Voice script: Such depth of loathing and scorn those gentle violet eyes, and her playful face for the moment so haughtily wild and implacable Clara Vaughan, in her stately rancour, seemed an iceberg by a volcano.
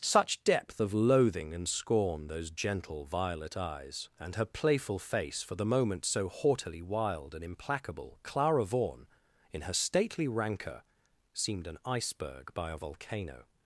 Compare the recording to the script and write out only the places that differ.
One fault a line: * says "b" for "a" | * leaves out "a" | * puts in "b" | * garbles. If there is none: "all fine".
all fine